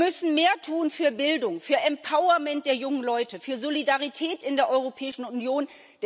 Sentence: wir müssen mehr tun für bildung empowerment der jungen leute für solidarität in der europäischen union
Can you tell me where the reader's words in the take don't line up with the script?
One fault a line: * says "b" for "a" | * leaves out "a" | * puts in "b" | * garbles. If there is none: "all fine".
* puts in "für"